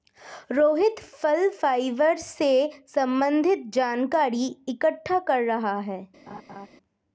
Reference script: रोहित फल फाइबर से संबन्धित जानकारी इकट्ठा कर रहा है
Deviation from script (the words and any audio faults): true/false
true